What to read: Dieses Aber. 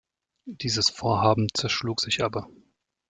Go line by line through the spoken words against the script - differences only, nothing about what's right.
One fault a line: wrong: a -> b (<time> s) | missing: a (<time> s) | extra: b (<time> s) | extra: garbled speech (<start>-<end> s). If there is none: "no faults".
extra: Vorhaben zerschlug sich (0.9 s)